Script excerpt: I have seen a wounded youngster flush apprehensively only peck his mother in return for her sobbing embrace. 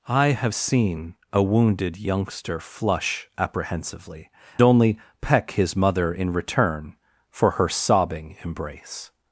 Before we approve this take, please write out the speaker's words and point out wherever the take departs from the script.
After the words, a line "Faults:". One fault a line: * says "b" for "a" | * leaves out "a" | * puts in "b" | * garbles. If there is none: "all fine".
I have seen a wounded youngster flush apprehensively only peck his mother in return for her sobbing embrace.
Faults:
all fine